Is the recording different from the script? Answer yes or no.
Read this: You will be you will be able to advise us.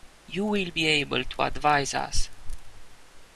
yes